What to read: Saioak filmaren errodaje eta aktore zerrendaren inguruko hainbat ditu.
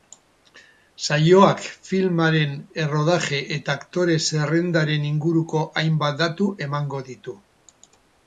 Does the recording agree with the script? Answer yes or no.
no